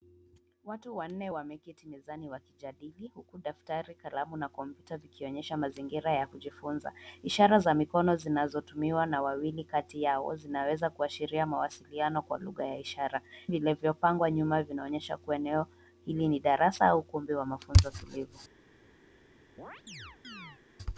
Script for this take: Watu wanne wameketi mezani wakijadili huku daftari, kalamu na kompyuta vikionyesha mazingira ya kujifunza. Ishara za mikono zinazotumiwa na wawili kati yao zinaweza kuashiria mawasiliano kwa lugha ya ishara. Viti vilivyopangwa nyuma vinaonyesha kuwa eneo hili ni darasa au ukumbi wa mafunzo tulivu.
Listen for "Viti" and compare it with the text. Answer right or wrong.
wrong